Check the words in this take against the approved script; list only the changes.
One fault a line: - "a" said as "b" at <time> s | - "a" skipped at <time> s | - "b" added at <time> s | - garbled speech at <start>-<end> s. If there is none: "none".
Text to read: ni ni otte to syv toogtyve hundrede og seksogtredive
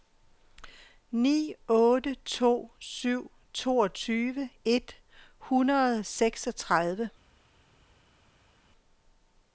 - "ni" skipped at 1.5 s
- "et" added at 4.7 s